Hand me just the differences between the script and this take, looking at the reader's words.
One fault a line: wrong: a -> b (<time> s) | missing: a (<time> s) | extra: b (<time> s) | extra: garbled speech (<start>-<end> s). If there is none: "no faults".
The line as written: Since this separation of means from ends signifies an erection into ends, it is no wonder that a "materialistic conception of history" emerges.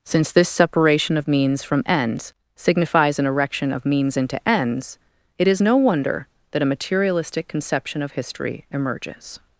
extra: of means (3.7 s)